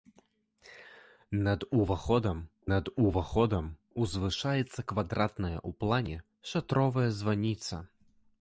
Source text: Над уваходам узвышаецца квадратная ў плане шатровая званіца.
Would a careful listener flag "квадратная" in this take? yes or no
no